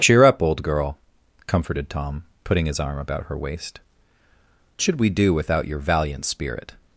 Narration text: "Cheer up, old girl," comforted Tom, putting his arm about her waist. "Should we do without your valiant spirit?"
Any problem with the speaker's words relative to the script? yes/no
no